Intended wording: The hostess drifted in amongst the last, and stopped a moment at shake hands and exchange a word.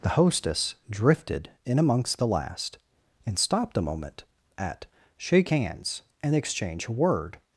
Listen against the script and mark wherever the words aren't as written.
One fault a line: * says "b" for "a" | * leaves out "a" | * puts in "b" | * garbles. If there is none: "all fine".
all fine